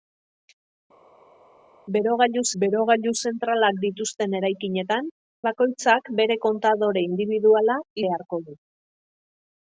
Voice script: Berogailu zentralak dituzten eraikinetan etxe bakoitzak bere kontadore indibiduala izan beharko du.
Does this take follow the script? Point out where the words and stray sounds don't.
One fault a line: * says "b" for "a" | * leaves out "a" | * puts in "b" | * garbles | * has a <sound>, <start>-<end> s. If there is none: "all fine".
* puts in "berogailu"
* leaves out "etxe"
* leaves out "izan"